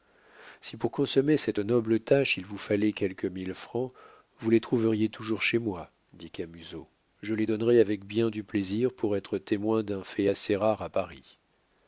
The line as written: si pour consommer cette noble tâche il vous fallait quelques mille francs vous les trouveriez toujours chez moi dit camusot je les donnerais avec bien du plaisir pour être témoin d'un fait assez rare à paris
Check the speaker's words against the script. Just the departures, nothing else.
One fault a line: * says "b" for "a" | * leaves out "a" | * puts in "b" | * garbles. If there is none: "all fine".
all fine